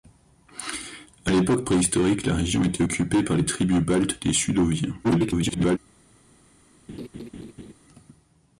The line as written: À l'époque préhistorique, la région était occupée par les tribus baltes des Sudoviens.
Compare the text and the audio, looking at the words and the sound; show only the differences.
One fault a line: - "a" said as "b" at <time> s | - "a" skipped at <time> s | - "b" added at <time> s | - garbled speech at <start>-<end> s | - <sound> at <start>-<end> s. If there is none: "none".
- garbled speech at 5.0-5.8 s
- laugh at 6.9-7.7 s